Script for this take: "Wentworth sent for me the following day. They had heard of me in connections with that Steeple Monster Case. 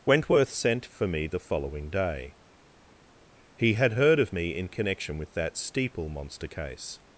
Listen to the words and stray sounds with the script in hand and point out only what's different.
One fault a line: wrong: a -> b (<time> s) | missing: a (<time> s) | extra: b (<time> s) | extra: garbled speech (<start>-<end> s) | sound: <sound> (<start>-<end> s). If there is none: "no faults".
wrong: They -> He (3.6 s)
wrong: connections -> connection (4.7 s)